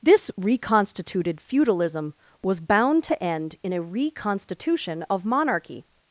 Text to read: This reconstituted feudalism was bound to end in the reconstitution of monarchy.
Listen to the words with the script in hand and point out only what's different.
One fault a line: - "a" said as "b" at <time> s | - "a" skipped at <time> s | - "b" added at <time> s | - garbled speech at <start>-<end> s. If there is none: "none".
- "the" said as "a" at 3.7 s